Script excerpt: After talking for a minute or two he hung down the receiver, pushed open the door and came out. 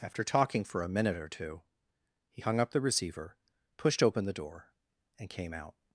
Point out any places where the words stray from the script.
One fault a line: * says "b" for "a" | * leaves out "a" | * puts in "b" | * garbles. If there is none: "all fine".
* says "up" for "down"